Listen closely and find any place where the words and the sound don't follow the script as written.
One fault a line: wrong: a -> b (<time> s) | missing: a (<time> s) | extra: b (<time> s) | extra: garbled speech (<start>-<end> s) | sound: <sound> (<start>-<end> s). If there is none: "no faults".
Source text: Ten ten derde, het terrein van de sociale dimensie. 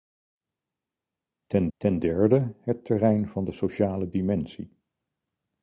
no faults